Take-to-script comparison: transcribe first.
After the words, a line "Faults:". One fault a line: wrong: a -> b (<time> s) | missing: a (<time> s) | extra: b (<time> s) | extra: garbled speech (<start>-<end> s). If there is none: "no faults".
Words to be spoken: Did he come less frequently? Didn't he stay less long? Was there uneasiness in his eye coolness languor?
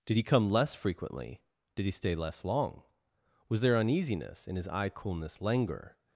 Did he come less frequently? Did he stay less long? Was there uneasiness in his eye coolness languor?
Faults:
wrong: Didn't -> Did (1.8 s)